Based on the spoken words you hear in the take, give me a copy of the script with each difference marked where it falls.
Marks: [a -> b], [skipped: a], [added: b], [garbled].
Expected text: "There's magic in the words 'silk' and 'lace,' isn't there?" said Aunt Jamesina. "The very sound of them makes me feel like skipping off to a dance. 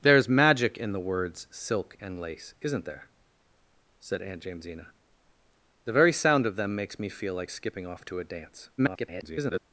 "There's magic in the words 'silk' and 'lace,' isn't there?" said Aunt Jamesina. "The very sound of them makes me feel like skipping off to a dance. [garbled]